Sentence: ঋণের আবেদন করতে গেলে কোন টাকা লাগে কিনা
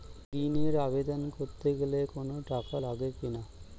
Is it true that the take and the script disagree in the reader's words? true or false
false